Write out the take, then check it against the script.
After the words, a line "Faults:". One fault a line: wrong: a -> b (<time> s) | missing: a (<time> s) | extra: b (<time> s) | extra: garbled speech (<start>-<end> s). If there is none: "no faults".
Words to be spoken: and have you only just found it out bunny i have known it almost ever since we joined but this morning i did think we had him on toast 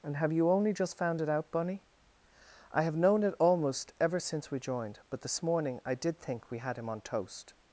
and have you only just found it out bunny i have known it almost ever since we joined but this morning i did think we had him on toast
Faults:
no faults